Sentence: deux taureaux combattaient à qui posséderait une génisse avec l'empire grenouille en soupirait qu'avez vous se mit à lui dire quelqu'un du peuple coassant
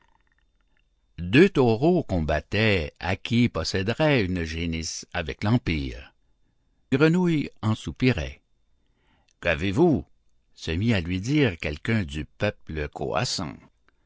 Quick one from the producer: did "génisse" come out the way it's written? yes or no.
yes